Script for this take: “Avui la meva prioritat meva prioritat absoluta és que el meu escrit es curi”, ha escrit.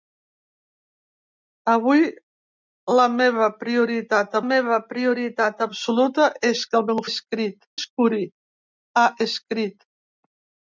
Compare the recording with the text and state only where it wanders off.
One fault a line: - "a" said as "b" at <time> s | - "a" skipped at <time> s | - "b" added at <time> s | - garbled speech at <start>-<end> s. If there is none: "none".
none